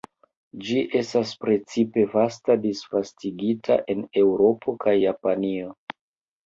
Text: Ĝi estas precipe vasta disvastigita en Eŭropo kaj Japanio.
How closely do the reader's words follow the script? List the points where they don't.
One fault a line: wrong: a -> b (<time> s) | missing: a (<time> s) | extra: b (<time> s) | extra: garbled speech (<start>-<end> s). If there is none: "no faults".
no faults